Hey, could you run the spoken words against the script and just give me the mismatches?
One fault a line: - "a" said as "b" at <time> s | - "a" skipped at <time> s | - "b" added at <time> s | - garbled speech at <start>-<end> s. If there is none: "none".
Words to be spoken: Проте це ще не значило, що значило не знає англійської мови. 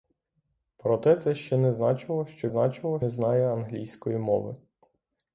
none